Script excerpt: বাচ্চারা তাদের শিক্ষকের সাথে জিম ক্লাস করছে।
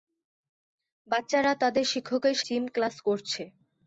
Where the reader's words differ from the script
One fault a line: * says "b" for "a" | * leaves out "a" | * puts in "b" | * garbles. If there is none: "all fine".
* leaves out "সাথে"